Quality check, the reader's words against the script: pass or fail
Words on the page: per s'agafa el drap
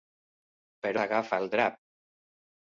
pass